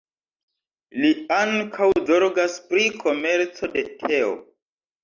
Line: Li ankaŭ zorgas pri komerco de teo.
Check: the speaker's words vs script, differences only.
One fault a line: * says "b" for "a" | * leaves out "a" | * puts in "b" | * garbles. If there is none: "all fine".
all fine